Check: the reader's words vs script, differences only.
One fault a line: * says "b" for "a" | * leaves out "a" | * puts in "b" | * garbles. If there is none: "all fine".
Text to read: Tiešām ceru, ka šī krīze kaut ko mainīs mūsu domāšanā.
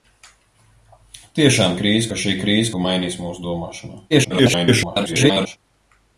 * says "krīze" for "ceru"
* leaves out "kaut"
* garbles